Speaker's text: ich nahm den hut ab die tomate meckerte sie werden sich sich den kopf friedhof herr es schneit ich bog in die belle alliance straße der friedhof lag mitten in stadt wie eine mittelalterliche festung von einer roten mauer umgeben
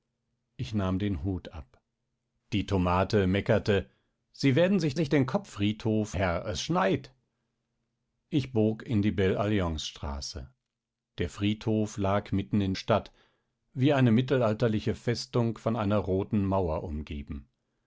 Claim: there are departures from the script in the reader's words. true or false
false